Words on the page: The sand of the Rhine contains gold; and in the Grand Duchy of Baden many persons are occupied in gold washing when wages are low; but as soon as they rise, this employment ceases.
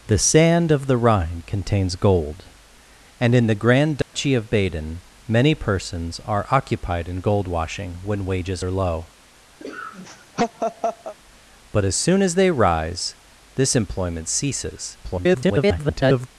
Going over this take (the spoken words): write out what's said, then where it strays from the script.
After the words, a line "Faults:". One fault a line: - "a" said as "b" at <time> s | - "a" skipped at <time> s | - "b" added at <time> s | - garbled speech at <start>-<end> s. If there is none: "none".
The sand of the Rhine contains gold; and in the Grand Duchy of Baden many persons are occupied in gold washing when wages are low; but as soon as they rise, this employment ceases. [garbled]
Faults:
- garbled speech at 15.0-16.3 s